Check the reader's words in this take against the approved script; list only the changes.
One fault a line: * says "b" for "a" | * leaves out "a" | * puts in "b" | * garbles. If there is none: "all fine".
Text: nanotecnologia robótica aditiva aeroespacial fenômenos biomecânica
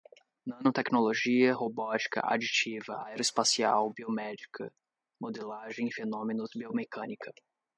* puts in "biomédica modelagem"